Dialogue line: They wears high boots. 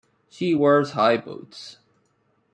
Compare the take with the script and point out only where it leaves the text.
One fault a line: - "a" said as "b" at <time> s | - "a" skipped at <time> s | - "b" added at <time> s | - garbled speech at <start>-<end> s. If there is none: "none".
- "They" said as "She" at 0.3 s